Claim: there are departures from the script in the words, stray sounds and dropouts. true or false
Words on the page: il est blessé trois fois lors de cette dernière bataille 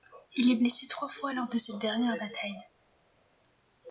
false